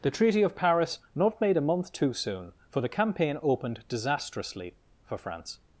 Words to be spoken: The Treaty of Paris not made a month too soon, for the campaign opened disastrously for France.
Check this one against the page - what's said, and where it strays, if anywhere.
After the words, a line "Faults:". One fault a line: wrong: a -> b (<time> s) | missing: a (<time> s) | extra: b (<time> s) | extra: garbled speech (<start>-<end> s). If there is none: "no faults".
The Treaty of Paris not made a month too soon, for the campaign opened disastrously for France.
Faults:
no faults